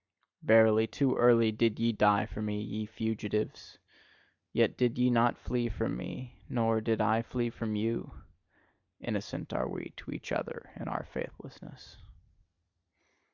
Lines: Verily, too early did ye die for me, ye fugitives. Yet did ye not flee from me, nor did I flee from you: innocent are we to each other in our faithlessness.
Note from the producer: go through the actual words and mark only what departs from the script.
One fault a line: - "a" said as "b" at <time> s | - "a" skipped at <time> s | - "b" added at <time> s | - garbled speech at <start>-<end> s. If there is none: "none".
none